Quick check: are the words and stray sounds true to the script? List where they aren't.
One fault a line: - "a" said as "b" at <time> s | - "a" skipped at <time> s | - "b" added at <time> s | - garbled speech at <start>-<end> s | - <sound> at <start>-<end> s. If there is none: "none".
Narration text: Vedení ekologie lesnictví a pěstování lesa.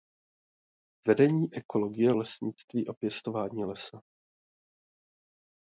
none